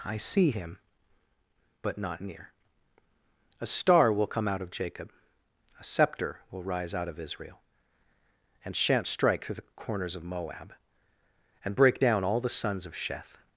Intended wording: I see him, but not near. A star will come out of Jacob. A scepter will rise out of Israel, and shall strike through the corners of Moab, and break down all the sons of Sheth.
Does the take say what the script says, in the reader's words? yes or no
no